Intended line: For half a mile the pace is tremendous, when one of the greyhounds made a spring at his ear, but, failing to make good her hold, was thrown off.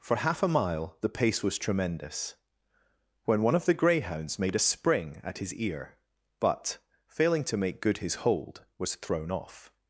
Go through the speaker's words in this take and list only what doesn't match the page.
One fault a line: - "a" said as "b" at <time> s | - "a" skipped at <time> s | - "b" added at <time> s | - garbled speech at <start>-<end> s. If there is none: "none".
- "is" said as "was" at 1.4 s
- "her" said as "his" at 8.0 s